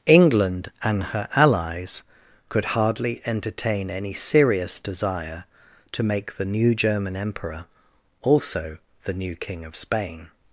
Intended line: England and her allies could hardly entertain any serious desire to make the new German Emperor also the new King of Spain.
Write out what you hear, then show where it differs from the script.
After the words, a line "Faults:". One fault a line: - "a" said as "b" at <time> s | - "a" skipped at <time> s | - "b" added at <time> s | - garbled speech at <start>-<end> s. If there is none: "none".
England and her allies could hardly entertain any serious desire to make the new German Emperor also the new King of Spain.
Faults:
none